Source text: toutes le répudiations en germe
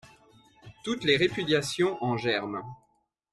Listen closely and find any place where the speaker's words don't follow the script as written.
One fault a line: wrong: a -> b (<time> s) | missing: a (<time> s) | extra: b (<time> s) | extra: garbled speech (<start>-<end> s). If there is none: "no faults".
wrong: le -> les (1.0 s)